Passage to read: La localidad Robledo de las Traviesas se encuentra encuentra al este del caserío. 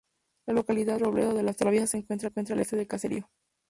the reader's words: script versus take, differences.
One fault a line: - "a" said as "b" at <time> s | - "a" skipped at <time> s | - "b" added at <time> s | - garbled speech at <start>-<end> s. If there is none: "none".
none